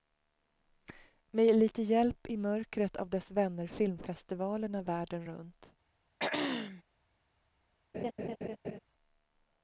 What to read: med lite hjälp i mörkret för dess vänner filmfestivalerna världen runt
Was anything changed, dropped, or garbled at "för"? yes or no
yes